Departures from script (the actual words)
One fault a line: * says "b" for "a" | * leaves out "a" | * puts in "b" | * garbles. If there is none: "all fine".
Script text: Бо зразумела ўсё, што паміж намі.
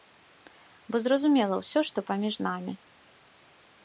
all fine